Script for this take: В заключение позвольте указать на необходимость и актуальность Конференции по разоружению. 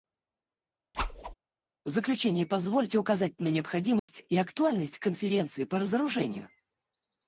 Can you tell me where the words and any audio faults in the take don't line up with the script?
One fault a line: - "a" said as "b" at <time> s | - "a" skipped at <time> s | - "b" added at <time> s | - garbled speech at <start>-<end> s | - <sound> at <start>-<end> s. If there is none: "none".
- whoosh at 0.9-1.3 s
- dropout at 4.0-4.1 s